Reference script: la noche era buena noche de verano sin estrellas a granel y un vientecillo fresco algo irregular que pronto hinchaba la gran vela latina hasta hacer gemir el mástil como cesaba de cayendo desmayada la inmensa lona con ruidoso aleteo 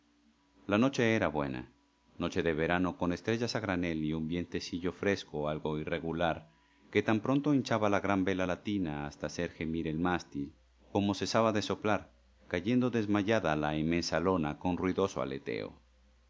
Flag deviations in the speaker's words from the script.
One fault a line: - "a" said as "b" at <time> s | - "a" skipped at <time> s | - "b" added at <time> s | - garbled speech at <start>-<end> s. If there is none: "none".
- "sin" said as "con" at 3.0 s
- "tan" added at 7.0 s
- "soplar" added at 11.6 s